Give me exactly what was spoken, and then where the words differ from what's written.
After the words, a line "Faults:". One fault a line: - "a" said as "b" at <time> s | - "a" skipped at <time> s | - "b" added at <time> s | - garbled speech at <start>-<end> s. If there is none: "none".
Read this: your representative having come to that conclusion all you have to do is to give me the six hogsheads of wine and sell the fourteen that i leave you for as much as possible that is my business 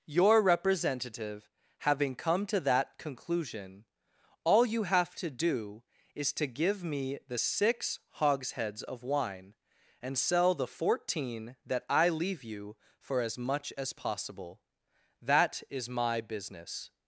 your representative having come to that conclusion all you have to do is to give me the six hogsheads of wine and sell the fourteen that i leave you for as much as possible that is my business
Faults:
none